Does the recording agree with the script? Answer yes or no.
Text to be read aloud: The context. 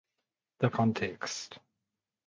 yes